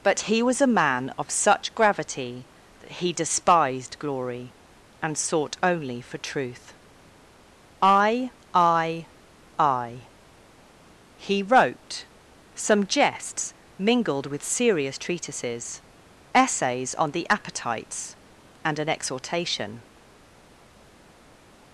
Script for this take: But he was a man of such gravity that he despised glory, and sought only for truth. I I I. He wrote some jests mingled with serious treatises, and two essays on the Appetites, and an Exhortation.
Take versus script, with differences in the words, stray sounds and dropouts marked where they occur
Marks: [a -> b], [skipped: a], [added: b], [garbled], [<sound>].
But he was a man of such gravity that he despised glory, and sought only for truth. I I I. He wrote some jests mingled with serious treatises, [skipped: and two] essays on the Appetites, and an Exhortation.